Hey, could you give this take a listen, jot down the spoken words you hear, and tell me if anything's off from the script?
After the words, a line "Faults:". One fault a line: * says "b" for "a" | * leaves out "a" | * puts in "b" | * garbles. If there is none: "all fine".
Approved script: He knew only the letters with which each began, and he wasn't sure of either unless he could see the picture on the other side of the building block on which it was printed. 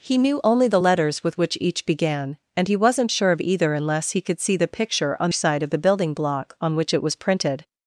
He knew only the letters with which each began, and he wasn't sure of either unless he could see the picture on side of the building block on which it was printed.
Faults:
* leaves out "the other"